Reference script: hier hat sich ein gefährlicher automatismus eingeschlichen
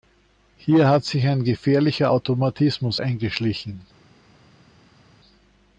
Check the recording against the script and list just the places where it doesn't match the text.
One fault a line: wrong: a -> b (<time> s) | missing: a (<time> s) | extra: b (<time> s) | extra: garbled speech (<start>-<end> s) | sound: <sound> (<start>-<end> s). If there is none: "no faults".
no faults